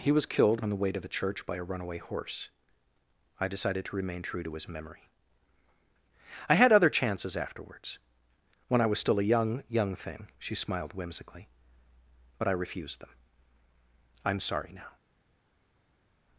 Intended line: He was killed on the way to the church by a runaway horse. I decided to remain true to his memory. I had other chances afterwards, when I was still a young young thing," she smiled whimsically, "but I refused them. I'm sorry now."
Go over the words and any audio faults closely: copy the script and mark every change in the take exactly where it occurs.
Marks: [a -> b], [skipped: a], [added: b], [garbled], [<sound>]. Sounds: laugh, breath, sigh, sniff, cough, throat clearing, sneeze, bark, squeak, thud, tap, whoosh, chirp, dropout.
He was killed on the way to the church by a runaway horse. I decided to remain true to his memory. I had other chances afterwards, when I was still a young young thing," she smiled whimsically, "but I refused them. I'm sorry now."